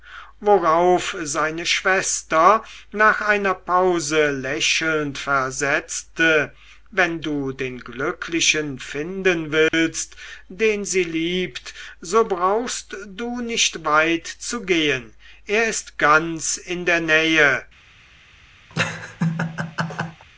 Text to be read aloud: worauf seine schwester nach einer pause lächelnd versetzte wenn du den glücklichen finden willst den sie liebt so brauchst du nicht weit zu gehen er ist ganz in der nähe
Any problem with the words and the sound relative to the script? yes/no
yes